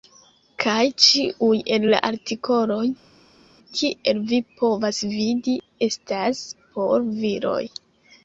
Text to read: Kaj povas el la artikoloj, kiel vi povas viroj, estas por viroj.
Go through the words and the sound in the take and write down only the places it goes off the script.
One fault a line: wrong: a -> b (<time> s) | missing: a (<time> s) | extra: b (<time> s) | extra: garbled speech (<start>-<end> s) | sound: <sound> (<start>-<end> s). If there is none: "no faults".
wrong: povas -> ĉiuj (1.1 s)
wrong: viroj -> vidi (5.1 s)